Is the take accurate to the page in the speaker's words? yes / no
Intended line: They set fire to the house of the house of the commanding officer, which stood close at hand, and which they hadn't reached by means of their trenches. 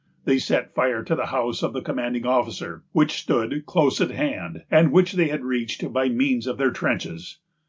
no